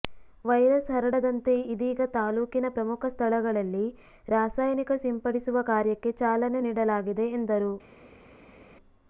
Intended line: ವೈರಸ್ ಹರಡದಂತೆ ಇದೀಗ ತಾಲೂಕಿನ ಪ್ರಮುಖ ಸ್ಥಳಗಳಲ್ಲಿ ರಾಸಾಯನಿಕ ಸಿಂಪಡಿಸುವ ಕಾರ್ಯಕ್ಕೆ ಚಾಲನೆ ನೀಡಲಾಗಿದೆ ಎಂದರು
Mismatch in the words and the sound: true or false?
false